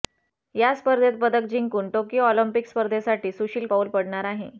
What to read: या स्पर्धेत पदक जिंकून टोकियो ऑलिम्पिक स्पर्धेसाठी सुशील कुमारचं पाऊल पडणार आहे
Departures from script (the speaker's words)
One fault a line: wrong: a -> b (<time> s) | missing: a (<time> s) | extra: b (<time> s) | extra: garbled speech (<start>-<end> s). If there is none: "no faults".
missing: कुमारचं (3.7 s)